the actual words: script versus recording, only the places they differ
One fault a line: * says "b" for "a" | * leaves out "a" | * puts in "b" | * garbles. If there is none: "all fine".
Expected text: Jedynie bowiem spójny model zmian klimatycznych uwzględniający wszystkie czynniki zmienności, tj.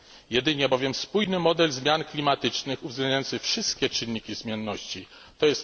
all fine